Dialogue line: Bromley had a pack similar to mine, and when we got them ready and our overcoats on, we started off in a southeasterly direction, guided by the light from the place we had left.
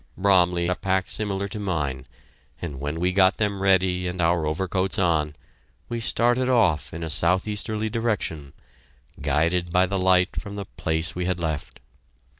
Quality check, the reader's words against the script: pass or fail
fail